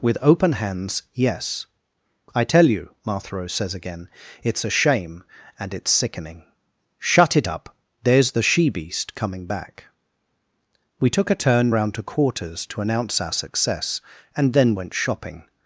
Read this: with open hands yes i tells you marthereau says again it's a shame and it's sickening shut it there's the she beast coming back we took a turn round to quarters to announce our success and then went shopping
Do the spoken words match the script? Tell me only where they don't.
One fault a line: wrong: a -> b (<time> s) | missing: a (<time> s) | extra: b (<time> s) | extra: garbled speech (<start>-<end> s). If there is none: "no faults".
wrong: tells -> tell (2.4 s)
extra: up (7.5 s)